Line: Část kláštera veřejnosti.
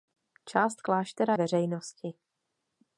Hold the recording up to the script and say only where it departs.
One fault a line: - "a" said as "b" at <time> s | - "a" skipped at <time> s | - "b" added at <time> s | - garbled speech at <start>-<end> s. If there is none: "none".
none